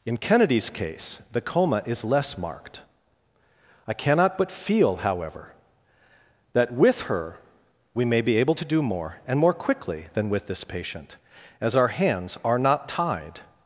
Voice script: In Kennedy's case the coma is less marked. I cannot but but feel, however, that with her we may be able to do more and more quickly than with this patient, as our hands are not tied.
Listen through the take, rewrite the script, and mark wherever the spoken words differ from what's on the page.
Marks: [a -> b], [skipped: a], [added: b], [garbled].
In Kennedy's case the coma is less marked. I cannot but [skipped: but] feel, however, that with her we may be able to do more and more quickly than with this patient, as our hands are not tied.